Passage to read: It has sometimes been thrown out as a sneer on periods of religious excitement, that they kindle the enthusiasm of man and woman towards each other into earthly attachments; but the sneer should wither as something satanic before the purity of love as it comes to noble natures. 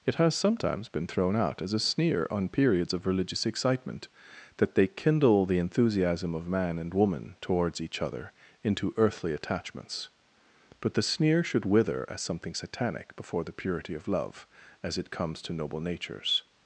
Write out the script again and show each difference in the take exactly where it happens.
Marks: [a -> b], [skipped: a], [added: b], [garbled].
It has sometimes been thrown out as a sneer on periods of religious excitement, that they kindle the enthusiasm of man and woman towards each other into earthly attachments; but the sneer should wither as something satanic before the purity of love as it comes to noble natures.